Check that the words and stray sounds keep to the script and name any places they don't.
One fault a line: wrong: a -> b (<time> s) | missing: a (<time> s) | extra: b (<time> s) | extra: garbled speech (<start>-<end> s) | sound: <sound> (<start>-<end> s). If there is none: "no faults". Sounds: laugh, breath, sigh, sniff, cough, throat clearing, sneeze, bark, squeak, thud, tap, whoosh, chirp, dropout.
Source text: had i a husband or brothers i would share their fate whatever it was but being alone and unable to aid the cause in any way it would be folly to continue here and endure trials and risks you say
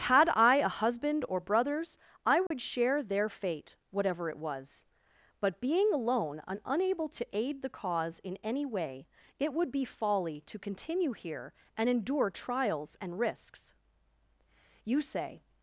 sound: dropout (2.5-2.5 s)